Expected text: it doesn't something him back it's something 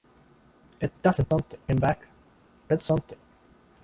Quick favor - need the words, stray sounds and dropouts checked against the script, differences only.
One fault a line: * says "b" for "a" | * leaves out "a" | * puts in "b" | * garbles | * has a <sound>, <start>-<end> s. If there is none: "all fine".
all fine